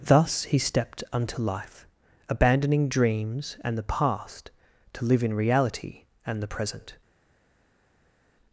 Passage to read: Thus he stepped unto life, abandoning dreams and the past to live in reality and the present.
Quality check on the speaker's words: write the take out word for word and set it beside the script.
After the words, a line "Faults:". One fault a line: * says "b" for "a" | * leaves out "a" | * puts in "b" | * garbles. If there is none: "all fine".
Thus he stepped unto life, abandoning dreams and the past to live in reality and the present.
Faults:
all fine